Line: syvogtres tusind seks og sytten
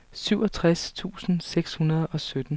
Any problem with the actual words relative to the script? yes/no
yes